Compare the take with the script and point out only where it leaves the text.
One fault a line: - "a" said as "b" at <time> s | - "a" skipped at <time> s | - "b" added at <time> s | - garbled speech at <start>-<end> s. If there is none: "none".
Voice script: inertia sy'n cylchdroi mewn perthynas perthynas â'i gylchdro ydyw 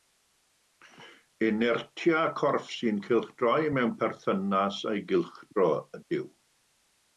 - "corff" added at 2.4 s
- "perthynas" skipped at 4.8 s